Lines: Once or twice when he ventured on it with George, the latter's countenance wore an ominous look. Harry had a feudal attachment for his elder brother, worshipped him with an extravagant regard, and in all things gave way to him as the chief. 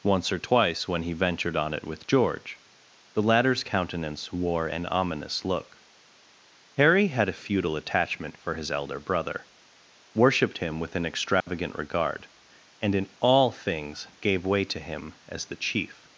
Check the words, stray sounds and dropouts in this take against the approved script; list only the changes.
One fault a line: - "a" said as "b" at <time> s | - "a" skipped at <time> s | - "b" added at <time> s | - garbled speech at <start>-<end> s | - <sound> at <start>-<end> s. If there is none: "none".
- dropout at 11.4-11.5 s